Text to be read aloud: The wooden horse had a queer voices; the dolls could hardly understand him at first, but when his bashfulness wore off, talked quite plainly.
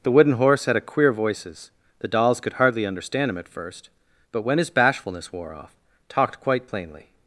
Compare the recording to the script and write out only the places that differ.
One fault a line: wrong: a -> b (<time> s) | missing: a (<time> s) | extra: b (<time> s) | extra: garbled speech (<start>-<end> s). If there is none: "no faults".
no faults